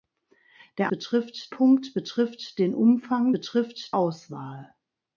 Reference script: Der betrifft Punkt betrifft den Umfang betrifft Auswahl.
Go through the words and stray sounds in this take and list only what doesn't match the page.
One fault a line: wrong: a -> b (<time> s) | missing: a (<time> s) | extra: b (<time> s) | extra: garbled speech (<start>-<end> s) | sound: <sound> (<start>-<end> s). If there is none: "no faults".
no faults